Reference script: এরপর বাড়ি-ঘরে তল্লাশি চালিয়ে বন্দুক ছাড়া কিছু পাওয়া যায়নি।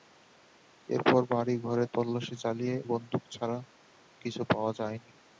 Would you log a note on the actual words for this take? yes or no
no